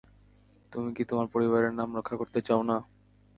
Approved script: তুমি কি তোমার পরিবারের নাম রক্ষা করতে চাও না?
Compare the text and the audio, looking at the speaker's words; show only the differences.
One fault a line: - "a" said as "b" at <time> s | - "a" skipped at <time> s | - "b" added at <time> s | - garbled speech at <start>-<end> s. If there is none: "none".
none